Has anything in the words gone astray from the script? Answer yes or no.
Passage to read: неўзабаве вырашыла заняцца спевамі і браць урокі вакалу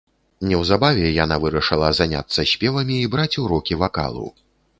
yes